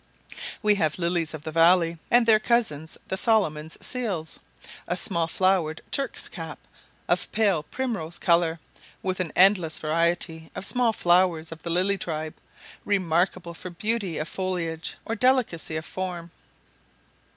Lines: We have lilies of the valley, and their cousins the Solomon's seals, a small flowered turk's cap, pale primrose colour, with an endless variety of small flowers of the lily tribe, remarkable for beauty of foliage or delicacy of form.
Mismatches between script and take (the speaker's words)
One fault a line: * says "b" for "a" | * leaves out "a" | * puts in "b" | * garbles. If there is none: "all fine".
* puts in "of"